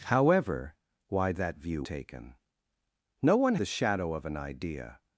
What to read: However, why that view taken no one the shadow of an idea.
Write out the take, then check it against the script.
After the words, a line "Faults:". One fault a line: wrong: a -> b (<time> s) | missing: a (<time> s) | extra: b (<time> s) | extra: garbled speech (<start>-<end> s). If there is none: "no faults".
However, why that view taken no one the shadow of an idea.
Faults:
no faults